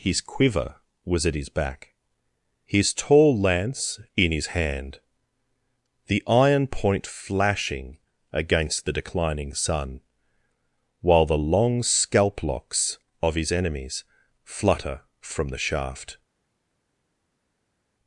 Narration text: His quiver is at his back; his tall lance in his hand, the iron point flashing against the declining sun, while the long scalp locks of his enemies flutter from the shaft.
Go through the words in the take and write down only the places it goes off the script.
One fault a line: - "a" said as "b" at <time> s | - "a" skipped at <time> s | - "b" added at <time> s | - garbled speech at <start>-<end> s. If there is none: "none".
- "is" said as "was" at 1.1 s